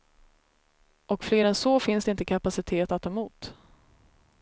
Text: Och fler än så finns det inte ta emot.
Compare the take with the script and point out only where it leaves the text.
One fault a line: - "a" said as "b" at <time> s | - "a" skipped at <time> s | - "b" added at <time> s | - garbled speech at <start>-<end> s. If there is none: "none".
- "kapacitet att" added at 2.2 s